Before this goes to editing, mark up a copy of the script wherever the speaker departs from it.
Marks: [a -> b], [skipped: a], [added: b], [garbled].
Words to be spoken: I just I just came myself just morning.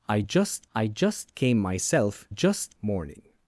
I just I just came myself just morning.